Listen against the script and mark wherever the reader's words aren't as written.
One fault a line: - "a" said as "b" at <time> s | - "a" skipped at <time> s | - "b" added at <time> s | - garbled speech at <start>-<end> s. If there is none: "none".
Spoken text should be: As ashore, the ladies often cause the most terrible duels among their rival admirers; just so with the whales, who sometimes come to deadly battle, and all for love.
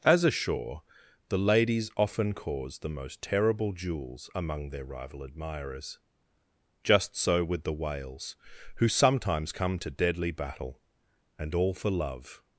none